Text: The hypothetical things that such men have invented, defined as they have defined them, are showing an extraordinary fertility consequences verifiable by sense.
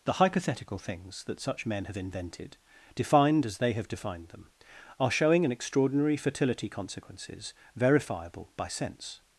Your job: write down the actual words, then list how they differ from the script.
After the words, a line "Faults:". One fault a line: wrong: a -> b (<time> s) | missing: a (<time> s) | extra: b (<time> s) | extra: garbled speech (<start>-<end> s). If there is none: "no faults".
The hypothetical things that such men have invented, defined as they have defined them, are showing an extraordinary fertility consequences verifiable by sense.
Faults:
no faults